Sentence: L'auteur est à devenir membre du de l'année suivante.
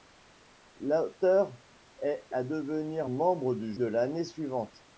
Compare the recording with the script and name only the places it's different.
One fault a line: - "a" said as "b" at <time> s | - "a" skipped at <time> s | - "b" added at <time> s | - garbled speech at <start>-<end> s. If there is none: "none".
none